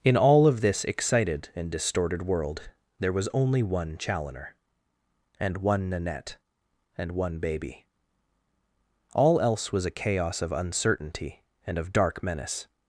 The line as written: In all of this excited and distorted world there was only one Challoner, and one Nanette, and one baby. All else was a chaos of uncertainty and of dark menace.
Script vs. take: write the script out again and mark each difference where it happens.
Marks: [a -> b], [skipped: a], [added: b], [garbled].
In all of this excited and distorted world there was only one Challoner, and one Nanette, and one baby. All else was a chaos of uncertainty and of dark menace.